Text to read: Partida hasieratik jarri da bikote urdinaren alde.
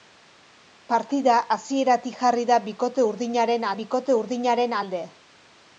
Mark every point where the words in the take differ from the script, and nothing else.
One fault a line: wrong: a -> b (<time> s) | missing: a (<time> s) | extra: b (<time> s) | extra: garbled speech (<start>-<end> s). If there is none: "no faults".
extra: bikote urdinaren (3.8 s)